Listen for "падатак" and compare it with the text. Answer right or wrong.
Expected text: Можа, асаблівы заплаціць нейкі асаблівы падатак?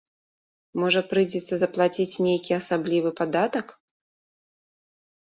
right